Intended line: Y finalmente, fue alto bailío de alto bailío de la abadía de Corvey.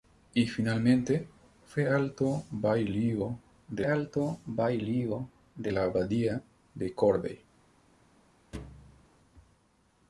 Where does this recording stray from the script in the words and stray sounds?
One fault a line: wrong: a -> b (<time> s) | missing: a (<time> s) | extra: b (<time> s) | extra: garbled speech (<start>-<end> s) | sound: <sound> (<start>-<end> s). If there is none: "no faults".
sound: thud (8.5-9.1 s)